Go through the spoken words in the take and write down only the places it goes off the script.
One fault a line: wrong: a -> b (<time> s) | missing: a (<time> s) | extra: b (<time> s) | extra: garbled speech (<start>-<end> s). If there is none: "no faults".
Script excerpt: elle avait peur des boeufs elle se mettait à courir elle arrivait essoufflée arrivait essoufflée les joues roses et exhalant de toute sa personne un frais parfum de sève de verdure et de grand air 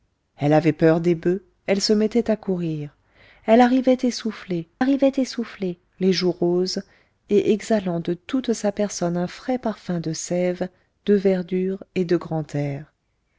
no faults